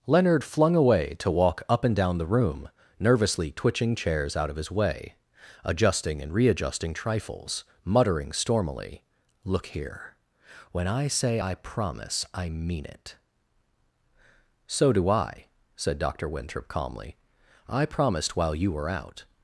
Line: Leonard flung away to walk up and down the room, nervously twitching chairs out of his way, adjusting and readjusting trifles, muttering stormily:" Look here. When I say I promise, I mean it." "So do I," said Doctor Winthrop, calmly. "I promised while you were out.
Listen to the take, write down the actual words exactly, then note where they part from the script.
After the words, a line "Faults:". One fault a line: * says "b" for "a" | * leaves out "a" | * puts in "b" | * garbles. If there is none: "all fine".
Leonard flung away to walk up and down the room, nervously twitching chairs out of his way, adjusting and readjusting trifles, muttering stormily:" Look here. When I say I promise, I mean it." "So do I," said Doctor Winthrop, calmly. "I promised while you were out.
Faults:
all fine